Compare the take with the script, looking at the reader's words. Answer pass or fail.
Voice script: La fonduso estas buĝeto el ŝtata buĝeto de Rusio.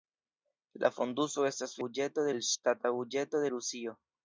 pass